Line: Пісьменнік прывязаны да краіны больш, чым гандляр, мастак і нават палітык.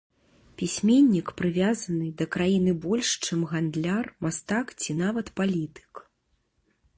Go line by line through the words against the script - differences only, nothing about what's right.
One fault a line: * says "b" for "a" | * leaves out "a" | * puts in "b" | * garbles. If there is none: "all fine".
* says "ці" for "і"